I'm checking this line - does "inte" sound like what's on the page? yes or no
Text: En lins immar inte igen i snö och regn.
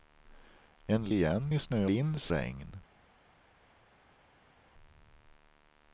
no